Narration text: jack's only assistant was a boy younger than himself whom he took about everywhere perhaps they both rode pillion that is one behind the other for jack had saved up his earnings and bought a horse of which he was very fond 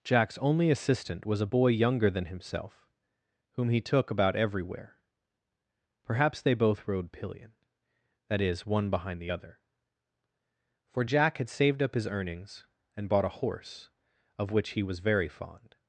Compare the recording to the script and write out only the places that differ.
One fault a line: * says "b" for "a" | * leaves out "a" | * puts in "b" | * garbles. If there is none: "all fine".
all fine